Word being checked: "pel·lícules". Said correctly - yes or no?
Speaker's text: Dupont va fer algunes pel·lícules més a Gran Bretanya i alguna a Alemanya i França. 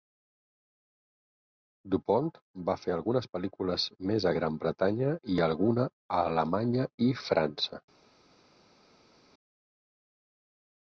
yes